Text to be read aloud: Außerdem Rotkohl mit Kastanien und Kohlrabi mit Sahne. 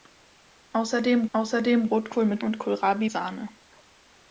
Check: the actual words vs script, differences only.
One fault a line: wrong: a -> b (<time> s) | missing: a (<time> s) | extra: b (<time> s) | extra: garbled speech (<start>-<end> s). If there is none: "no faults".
extra: außerdem (1.3 s)
missing: Kastanien (2.4 s)
missing: mit (3.1 s)